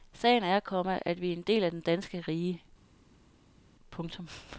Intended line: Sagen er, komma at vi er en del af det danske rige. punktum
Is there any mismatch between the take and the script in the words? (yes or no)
no